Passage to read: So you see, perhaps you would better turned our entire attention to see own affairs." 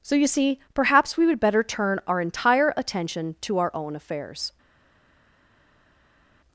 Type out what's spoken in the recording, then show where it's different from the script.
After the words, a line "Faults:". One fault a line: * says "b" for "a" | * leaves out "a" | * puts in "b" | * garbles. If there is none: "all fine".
So you see, perhaps we would better turn our entire attention to our own affairs."
Faults:
* says "we" for "you"
* says "turn" for "turned"
* says "our" for "see"